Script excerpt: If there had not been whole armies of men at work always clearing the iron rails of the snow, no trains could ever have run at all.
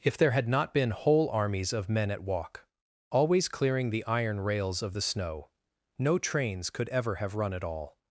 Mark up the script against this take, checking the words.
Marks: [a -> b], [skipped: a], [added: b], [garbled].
If there had not been whole armies of men at [work -> walk] always clearing the iron rails of the snow, no trains could ever have run at all.